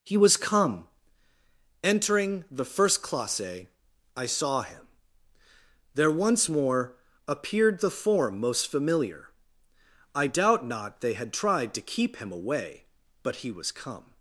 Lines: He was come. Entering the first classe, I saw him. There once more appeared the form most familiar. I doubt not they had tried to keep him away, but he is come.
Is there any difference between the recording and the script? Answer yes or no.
yes